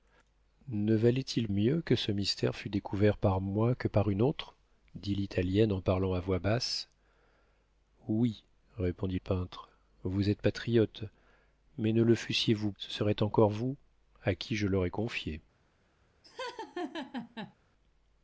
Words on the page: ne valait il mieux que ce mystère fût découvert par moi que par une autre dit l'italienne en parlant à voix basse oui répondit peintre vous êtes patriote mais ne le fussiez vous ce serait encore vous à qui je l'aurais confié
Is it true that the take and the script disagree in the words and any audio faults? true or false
true